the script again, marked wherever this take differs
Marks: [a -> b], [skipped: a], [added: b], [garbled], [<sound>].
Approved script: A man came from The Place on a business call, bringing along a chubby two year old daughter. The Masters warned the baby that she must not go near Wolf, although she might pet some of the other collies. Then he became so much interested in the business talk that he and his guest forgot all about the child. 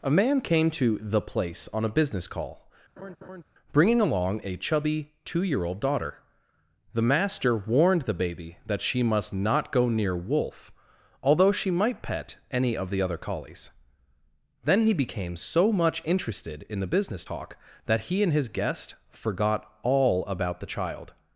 A man came [from -> to] The Place on a business call, [laugh] bringing along a chubby two year old daughter. The [Masters -> Master] warned the baby that she must not go near Wolf, although she might pet [some -> any] of the other collies. Then he became so much interested in the business talk that he and his guest forgot all about the child.